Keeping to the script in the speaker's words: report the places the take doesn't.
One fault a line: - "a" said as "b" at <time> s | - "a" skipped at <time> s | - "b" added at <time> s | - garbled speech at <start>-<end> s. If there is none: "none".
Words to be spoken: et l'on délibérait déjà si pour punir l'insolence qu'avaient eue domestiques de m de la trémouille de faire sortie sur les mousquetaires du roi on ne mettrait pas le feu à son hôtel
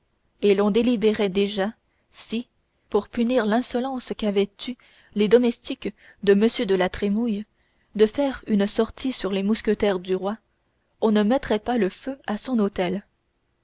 - "les" added at 5.1 s
- "une" added at 8.5 s